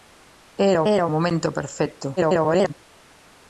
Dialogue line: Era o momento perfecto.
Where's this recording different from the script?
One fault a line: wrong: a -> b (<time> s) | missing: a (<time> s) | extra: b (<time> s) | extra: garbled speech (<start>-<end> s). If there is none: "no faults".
extra: era (0.9 s)
extra: garbled speech (2.2-2.7 s)